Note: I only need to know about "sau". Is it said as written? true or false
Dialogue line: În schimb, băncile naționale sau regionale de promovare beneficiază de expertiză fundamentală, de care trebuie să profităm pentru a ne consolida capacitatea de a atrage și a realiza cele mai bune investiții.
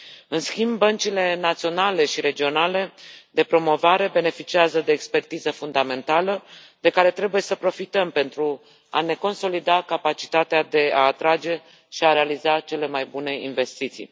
false